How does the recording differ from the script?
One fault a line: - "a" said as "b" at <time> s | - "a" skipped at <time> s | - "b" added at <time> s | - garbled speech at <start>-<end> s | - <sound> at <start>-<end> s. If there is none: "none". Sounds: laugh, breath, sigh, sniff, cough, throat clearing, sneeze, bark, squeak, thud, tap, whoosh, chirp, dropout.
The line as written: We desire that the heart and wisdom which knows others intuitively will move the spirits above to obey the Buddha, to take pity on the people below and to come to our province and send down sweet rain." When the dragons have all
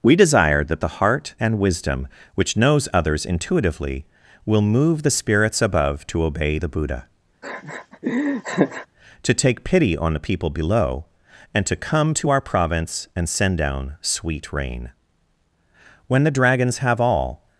- laugh at 7.4-8.9 s